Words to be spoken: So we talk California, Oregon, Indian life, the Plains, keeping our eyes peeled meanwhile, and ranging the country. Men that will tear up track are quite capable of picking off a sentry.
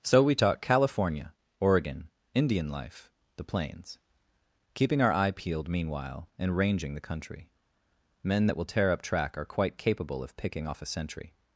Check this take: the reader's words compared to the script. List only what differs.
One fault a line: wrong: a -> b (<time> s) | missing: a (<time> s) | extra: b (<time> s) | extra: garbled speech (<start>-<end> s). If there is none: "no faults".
wrong: eyes -> eye (5.1 s)